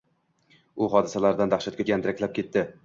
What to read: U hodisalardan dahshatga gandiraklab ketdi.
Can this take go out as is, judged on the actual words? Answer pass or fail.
pass